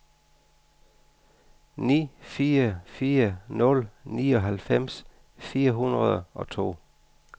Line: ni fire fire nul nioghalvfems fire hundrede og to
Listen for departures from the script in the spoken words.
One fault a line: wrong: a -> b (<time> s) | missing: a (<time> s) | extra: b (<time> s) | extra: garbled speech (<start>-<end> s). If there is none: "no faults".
no faults